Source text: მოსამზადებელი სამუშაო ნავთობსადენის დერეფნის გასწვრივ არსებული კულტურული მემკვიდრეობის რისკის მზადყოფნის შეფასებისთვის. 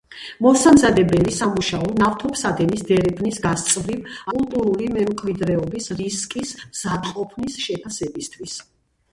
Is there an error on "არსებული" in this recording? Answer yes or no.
yes